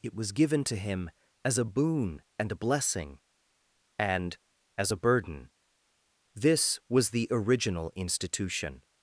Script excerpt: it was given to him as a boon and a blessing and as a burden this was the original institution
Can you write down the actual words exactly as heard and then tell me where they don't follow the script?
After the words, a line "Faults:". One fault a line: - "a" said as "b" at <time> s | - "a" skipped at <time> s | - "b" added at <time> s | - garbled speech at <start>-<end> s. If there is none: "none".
it was given to him as a boon and a blessing and as a burden this was the original institution
Faults:
none